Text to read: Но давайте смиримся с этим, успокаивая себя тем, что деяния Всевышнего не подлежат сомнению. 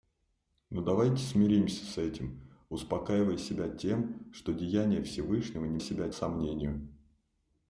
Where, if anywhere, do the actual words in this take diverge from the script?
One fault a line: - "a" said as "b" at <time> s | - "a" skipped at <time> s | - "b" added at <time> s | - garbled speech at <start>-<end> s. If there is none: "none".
- "подлежат" said as "себя" at 5.8 s